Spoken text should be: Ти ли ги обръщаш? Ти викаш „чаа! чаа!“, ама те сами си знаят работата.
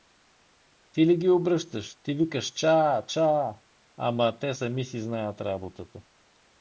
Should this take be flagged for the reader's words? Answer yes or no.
no